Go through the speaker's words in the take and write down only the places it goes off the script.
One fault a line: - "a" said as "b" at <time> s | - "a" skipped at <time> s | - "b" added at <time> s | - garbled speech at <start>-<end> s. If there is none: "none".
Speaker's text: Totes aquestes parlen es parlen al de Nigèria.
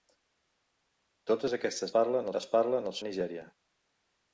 none